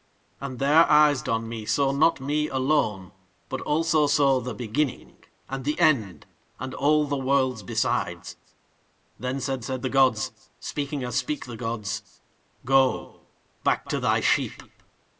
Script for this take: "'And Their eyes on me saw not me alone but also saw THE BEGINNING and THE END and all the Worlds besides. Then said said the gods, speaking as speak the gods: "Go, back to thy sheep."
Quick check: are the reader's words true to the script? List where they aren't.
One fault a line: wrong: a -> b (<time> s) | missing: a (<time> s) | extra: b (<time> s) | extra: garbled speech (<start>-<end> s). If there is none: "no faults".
no faults